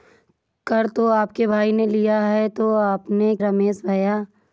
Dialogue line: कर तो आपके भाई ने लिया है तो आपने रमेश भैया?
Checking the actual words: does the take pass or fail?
pass